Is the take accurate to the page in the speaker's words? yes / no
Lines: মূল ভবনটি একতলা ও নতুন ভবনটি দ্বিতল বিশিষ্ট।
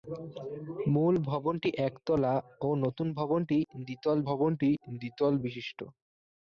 no